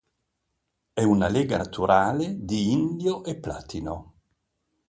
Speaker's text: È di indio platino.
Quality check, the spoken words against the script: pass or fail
fail